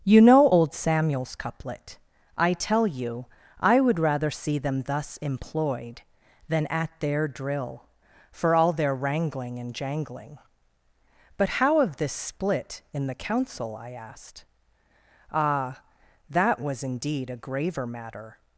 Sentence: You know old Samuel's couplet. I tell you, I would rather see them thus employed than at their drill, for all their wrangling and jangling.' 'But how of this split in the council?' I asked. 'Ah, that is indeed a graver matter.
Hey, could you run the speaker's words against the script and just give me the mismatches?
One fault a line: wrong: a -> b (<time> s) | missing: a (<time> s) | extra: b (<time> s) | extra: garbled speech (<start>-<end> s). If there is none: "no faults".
wrong: is -> was (16.6 s)